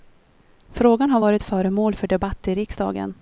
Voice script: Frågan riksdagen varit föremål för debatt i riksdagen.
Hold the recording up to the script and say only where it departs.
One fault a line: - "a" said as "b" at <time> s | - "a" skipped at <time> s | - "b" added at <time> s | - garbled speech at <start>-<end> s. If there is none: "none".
- "riksdagen" said as "har" at 1.1 s